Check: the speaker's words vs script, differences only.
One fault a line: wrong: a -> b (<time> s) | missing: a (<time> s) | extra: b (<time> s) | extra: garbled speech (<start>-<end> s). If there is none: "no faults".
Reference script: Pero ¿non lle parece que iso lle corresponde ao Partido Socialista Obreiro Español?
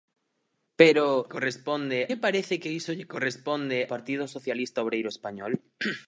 wrong: non -> corresponde (1.3 s)
missing: ao (3.8 s)